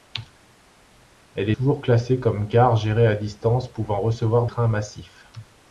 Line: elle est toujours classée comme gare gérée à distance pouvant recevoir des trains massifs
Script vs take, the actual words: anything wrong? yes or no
yes